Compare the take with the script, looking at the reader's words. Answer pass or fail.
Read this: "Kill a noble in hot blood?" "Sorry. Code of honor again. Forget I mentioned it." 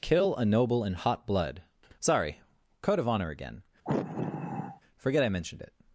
pass